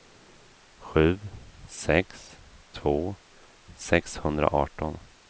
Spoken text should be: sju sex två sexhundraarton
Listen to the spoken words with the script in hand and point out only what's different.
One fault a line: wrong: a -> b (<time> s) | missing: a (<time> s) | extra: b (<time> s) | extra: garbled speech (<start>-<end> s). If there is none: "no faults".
no faults